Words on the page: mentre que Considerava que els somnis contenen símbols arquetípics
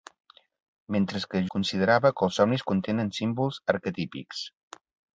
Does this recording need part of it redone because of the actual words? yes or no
no